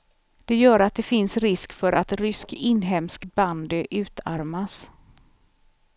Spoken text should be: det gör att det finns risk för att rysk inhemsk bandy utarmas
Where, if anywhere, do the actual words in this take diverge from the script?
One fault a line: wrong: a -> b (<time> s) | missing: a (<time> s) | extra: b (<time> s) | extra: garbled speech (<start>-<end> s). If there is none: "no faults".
no faults